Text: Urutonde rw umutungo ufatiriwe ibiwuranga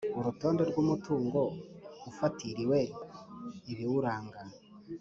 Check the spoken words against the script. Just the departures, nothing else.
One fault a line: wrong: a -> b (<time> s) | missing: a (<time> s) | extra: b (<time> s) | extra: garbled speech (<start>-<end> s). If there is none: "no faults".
no faults